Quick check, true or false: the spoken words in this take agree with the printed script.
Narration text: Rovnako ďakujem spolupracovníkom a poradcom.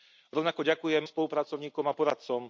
true